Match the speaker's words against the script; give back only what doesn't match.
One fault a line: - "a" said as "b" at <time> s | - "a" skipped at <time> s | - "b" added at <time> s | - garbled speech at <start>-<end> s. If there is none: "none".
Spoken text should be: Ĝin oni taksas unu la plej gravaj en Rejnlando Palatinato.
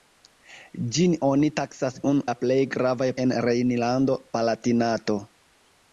none